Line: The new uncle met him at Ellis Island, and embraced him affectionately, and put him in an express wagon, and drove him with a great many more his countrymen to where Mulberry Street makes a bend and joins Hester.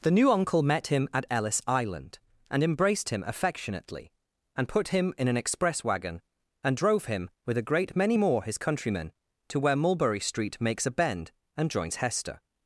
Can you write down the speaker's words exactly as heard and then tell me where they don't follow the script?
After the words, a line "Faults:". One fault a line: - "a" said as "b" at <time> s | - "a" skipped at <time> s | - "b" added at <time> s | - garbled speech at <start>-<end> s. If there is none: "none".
The new uncle met him at Ellis Island, and embraced him affectionately, and put him in an express wagon, and drove him with a great many more his countrymen to where Mulberry Street makes a bend and joins Hester.
Faults:
none